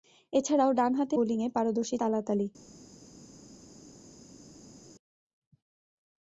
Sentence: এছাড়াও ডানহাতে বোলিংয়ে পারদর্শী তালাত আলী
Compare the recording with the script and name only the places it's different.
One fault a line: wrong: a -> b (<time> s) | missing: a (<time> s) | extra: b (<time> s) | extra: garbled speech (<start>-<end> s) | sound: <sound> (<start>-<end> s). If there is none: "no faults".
no faults